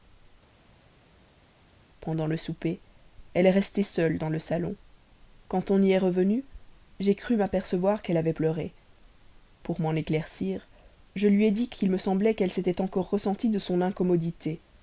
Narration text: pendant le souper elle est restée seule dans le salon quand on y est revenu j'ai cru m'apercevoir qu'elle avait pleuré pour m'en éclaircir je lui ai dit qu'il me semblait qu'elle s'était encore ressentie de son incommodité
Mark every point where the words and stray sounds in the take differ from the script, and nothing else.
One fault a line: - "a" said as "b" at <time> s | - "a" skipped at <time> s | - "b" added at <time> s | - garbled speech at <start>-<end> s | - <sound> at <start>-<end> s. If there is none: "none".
none